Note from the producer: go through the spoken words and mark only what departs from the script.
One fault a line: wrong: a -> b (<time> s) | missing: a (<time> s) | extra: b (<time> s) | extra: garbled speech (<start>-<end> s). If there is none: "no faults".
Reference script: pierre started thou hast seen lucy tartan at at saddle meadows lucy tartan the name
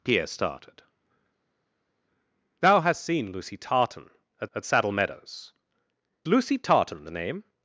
no faults